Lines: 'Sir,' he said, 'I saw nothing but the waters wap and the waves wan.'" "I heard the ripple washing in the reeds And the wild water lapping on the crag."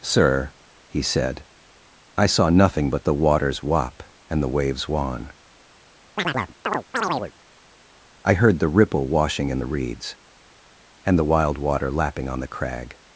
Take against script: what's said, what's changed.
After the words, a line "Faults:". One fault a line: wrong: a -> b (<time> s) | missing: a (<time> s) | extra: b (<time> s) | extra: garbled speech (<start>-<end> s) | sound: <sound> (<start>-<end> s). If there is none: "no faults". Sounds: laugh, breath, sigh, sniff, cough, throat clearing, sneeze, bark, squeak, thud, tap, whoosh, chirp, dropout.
'Sir,' he said, 'I saw nothing but the waters wap and the waves wan.'" "I heard the ripple washing in the reeds And the wild water lapping on the crag."
Faults:
sound: chirp (6.2-7.3 s)